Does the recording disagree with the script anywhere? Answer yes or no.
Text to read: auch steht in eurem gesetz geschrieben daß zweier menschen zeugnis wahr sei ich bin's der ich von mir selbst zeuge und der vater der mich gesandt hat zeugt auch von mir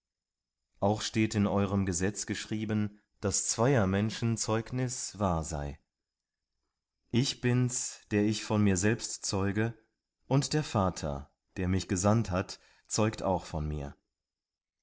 no